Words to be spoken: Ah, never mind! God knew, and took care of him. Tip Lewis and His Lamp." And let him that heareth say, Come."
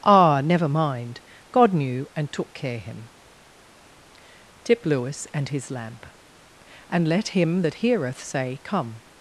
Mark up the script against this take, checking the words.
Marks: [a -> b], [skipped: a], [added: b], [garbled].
Ah, never mind! God knew, and took care [skipped: of] him. Tip Lewis and His Lamp." And let him that heareth say, Come."